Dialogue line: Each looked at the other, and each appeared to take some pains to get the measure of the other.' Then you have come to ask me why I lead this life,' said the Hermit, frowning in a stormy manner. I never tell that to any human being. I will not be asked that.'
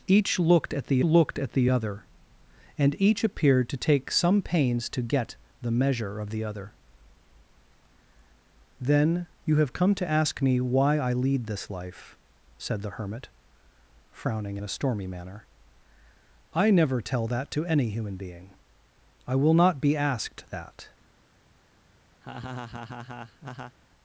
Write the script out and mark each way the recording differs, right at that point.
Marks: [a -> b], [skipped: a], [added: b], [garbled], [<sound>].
Each looked at the [added: looked at the] other, and each appeared to take some pains to get the measure of the other.' Then you have come to ask me why I lead this life,' said the Hermit, frowning in a stormy manner. I never tell that to any human being. I will not be asked that.' [laugh]